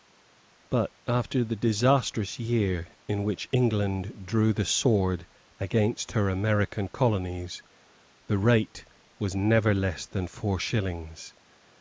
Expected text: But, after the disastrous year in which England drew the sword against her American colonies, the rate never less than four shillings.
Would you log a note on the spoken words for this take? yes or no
yes